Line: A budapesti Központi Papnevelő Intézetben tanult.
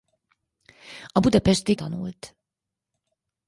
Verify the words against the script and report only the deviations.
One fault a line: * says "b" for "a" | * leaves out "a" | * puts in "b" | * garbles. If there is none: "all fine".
* leaves out "Központi Papnevelő Intézetben"